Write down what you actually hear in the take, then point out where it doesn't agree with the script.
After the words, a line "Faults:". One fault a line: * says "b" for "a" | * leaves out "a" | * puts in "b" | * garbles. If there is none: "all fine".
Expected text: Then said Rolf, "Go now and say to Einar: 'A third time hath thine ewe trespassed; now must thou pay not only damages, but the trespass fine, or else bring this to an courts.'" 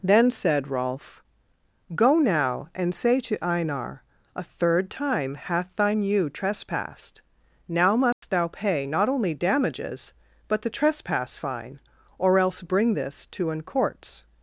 Then said Rolf, "Go now and say to Einar: 'A third time hath thine ewe trespassed; now must thou pay not only damages, but the trespass fine, or else bring this to an courts.'"
Faults:
all fine